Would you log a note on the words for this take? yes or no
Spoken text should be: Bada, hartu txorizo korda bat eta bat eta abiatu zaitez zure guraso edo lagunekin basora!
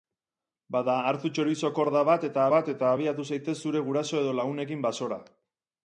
no